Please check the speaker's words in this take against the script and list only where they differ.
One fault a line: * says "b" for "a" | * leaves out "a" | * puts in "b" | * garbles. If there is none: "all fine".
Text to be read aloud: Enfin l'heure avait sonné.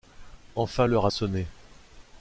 * leaves out "avait"